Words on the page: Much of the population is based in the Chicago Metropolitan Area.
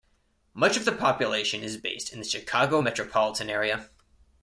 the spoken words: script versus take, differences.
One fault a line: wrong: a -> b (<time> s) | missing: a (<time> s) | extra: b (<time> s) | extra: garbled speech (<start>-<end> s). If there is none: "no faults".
no faults